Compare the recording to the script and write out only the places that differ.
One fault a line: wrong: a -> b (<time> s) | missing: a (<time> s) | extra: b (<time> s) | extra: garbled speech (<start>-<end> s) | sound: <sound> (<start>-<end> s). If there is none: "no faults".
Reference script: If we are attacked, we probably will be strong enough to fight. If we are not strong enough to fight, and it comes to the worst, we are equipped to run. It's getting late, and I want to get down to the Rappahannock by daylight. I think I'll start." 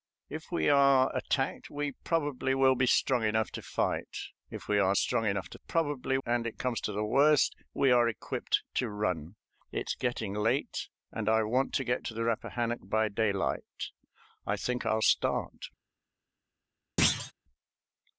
missing: not (5.0 s)
wrong: fight -> probably (5.5 s)
missing: down (12.1 s)
sound: thud (17.0-17.3 s)